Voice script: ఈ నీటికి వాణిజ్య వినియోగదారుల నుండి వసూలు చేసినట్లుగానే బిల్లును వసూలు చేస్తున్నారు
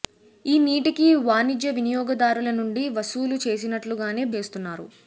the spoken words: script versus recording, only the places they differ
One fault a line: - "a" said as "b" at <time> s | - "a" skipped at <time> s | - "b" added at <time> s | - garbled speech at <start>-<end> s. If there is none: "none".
- "బిల్లును వసూలు" skipped at 4.2 s